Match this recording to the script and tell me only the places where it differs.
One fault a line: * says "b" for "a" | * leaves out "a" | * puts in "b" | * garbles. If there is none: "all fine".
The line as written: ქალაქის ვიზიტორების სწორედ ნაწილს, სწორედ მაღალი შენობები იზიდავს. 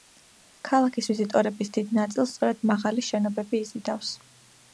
* says "დიდ" for "სწორედ"